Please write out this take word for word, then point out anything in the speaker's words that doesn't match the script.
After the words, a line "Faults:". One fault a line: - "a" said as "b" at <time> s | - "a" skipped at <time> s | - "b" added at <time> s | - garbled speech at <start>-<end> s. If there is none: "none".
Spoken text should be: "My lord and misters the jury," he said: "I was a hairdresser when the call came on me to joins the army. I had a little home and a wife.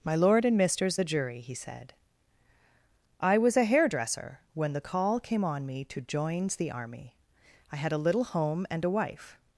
"My lord and misters the jury," he said: "I was a hairdresser when the call came on me to joins the army. I had a little home and a wife.
Faults:
none